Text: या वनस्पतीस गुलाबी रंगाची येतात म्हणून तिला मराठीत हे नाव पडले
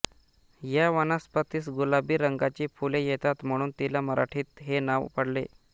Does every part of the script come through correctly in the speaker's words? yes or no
no